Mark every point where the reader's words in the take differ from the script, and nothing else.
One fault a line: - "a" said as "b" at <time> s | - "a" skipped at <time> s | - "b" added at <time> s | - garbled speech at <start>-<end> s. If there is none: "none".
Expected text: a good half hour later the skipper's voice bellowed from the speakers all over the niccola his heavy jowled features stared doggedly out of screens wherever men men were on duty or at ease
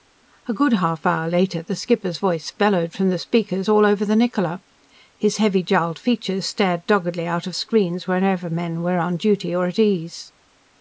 - "men" skipped at 8.8 s